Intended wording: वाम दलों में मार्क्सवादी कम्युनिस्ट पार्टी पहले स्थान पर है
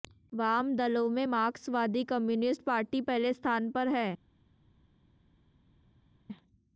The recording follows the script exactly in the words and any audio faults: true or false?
true